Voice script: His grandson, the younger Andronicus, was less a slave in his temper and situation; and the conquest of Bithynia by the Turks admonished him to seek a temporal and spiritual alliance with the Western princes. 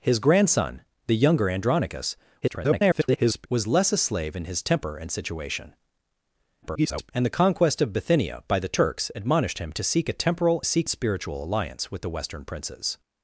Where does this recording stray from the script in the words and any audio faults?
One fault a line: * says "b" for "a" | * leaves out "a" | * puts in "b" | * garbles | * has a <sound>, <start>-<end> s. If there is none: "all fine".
* garbles
* garbles
* says "seek" for "and"